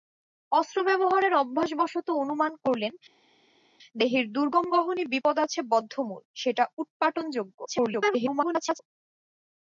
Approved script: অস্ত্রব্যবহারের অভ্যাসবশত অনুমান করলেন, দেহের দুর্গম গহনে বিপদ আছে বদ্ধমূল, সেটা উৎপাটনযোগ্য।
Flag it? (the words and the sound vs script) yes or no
yes